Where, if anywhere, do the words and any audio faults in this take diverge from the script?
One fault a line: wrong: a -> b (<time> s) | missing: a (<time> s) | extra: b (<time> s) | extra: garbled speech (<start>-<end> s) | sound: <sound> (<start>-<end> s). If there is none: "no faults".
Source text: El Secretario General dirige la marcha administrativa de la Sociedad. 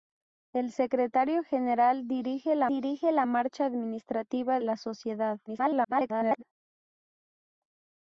extra: dirige la (2.7 s)
missing: de (4.6 s)
extra: garbled speech (5.5-6.4 s)